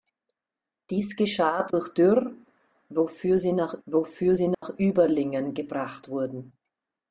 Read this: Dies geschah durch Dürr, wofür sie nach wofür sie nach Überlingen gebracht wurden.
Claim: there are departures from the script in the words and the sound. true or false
true